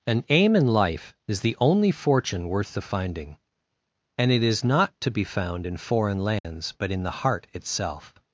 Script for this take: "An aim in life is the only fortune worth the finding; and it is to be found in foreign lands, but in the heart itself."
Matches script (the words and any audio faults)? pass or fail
fail